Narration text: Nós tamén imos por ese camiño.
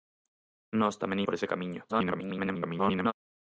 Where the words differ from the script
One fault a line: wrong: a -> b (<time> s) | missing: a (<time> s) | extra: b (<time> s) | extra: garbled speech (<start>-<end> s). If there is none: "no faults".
missing: imos (1.2 s)
extra: garbled speech (1.9-3.1 s)